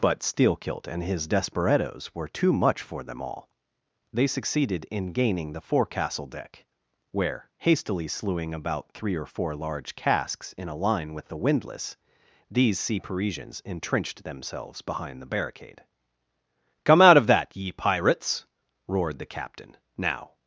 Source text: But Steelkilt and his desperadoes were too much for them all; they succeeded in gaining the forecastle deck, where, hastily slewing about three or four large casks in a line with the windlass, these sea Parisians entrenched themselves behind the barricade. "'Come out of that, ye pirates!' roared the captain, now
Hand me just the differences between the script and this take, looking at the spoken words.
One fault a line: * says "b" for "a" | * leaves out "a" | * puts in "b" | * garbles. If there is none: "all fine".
all fine